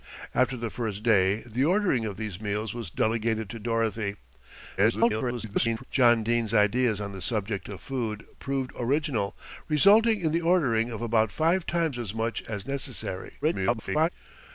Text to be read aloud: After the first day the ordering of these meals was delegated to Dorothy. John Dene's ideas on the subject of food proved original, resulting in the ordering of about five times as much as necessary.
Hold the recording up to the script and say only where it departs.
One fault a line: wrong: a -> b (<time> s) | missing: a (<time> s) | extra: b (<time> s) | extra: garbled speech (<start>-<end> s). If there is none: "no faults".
extra: garbled speech (4.8-5.8 s)
extra: garbled speech (13.4-14.1 s)